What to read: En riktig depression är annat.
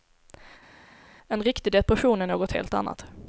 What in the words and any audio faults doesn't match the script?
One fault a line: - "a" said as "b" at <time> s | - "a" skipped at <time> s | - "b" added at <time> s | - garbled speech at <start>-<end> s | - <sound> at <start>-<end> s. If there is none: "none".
- "något helt" added at 2.3 s